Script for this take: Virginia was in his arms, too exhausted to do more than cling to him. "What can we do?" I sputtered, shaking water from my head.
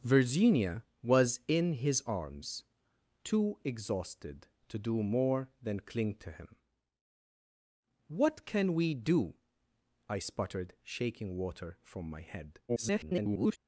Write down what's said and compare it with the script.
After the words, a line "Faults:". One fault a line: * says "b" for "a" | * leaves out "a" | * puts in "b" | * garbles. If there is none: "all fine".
Virginia was in his arms, too exhausted to do more than cling to him. "What can we do?" I sputtered, shaking water from my head. [garbled]
Faults:
* garbles